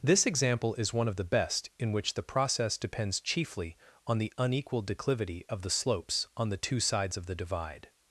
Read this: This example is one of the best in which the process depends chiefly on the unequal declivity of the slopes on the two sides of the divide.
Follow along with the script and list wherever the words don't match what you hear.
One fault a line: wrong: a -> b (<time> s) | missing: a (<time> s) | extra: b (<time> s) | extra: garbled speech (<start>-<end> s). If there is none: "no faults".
no faults